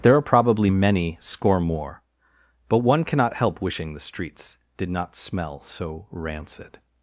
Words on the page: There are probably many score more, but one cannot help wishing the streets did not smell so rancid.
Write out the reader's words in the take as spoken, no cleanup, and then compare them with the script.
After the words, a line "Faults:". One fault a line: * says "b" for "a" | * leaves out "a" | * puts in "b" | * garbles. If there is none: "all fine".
There are probably many score more, but one cannot help wishing the streets did not smell so rancid.
Faults:
all fine